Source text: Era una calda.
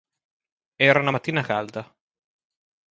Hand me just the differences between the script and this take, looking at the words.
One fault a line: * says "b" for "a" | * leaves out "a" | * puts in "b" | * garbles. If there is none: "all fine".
* puts in "mattina"